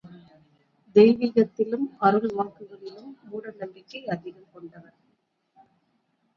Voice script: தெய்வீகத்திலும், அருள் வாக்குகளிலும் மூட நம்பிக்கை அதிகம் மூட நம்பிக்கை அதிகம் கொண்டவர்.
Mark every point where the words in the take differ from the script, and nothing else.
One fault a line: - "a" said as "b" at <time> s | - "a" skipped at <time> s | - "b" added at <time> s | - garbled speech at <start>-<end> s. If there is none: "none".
- "மூட நம்பிக்கை அதிகம்" skipped at 4.5 s